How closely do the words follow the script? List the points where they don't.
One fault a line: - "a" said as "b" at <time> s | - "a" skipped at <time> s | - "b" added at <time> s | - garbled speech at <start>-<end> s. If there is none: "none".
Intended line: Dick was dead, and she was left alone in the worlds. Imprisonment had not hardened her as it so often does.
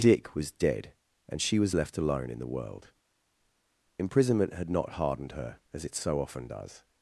- "worlds" said as "world" at 2.5 s